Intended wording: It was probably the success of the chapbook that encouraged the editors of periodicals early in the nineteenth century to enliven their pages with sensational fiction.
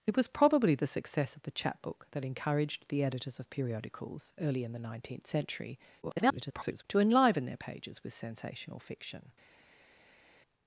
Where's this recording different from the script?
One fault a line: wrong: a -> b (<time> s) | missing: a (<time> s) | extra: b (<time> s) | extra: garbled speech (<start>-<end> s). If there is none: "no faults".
extra: garbled speech (6.0-6.8 s)